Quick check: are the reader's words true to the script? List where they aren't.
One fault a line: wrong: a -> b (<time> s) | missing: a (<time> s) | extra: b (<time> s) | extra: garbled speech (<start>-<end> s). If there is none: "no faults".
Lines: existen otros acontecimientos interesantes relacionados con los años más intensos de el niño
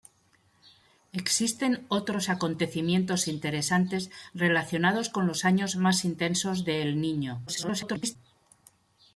extra: garbled speech (7.5-8.2 s)